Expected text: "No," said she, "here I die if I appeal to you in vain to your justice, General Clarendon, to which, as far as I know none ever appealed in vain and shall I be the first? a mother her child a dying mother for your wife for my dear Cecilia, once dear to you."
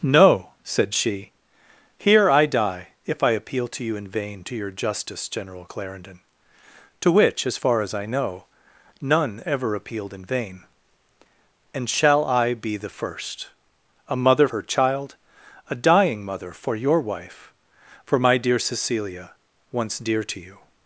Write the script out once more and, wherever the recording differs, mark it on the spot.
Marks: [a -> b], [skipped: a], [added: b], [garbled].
"No," said she, "here I die if I appeal to you in vain to your justice, General Clarendon, to which, as far as I know none ever appealed in vain and shall I be the first? a mother her child a dying mother for your wife for my dear Cecilia, once dear to you."